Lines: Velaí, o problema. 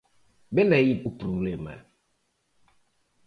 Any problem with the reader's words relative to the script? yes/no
no